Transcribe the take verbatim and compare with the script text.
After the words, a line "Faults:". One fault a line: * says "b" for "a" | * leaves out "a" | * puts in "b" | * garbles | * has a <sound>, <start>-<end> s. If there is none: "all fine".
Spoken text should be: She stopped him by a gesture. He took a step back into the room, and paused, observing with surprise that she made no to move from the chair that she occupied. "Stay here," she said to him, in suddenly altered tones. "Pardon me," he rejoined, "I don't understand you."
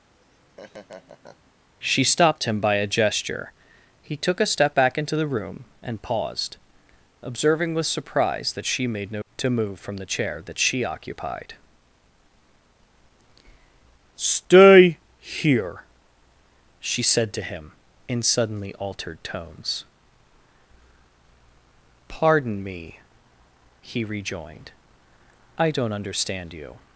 She stopped him by a gesture. He took a step back into the room, and paused, observing with surprise that she made no to move from the chair that she occupied. "Stay here," she said to him, in suddenly altered tones. "Pardon me," he rejoined, "I don't understand you."
Faults:
* has a laugh, 0.2-1.5 s